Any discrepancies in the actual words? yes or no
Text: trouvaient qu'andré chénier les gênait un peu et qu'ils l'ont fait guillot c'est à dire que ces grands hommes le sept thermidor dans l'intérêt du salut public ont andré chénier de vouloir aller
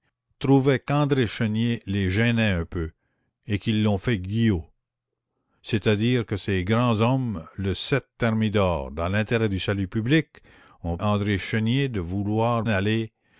no